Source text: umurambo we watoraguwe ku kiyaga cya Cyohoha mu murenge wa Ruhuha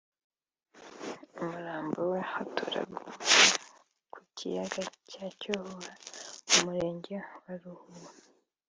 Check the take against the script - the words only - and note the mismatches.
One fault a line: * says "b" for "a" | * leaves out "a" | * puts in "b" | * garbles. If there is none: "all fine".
all fine